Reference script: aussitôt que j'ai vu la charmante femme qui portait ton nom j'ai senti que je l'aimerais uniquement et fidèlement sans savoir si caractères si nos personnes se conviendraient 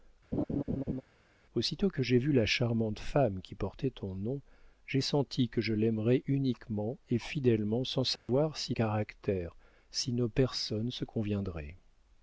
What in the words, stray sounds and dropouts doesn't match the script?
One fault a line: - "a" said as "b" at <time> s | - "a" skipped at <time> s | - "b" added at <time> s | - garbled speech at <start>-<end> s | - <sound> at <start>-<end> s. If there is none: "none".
- laugh at 0.3-1.0 s
- dropout at 8.2-8.3 s